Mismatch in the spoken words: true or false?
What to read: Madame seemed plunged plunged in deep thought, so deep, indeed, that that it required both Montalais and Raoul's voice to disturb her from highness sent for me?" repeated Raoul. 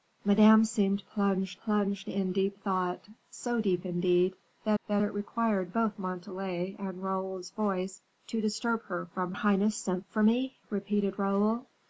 false